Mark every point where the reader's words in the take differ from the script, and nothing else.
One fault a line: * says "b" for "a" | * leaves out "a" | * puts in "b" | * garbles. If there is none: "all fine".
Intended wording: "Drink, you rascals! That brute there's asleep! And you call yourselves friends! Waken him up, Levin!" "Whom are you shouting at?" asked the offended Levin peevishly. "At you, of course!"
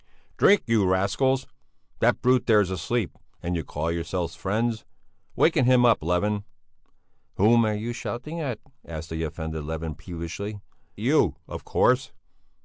* leaves out "At"